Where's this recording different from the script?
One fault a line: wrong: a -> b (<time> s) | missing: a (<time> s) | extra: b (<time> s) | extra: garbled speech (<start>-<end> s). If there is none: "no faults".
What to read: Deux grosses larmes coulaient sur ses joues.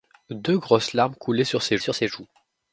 extra: sur ses (1.8 s)